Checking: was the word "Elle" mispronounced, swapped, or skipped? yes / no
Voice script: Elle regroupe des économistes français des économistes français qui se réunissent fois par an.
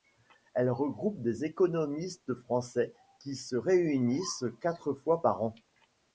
no